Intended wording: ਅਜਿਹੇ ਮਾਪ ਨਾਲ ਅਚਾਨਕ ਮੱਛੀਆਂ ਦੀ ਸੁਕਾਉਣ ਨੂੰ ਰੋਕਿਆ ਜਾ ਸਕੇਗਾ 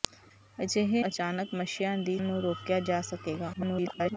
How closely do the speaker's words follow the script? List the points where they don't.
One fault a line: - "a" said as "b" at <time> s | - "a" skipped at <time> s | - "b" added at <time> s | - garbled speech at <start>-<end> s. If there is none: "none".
- "ਮਾਪ ਨਾਲ" skipped at 1.0 s
- "ਸੁਕਾਉਣ" skipped at 2.2 s
- garbled speech at 3.5-4.2 s